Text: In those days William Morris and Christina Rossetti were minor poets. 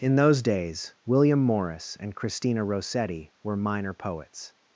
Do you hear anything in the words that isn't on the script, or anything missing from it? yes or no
no